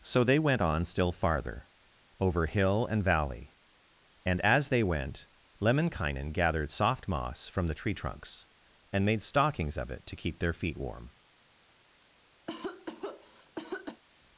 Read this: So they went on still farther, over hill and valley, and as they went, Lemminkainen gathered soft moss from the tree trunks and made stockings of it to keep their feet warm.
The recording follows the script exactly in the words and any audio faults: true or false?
false